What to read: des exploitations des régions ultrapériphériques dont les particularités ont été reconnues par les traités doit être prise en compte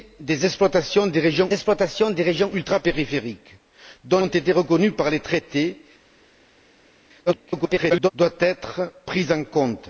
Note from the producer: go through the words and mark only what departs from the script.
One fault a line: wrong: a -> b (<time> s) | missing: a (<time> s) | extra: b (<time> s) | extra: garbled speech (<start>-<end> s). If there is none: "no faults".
extra: exploitations des régions (1.5 s)
missing: les particularités (4.2 s)
extra: garbled speech (7.3-8.1 s)